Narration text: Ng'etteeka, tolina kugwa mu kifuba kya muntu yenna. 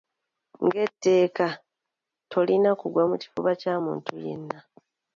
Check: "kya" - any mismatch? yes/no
no